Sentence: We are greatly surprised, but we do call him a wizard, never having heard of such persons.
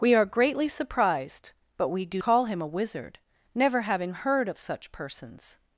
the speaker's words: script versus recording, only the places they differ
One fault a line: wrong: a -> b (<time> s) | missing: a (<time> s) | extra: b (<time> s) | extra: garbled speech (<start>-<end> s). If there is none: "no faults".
no faults